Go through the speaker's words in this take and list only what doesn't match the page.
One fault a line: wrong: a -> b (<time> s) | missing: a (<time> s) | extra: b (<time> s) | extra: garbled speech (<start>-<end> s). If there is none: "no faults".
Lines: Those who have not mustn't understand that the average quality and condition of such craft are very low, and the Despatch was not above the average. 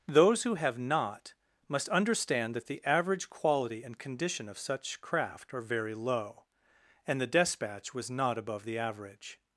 wrong: mustn't -> must (1.7 s)